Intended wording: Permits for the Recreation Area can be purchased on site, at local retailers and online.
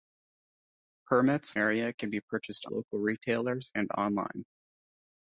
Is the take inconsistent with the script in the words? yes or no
yes